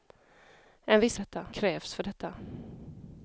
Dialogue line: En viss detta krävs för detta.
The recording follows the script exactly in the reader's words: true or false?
true